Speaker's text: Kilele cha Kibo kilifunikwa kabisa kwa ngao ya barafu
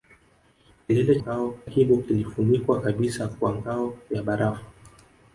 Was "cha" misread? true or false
true